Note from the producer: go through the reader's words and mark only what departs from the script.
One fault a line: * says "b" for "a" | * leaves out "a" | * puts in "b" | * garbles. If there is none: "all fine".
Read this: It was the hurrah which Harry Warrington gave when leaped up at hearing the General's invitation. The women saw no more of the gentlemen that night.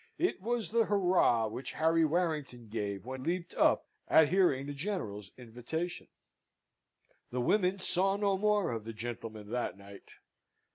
all fine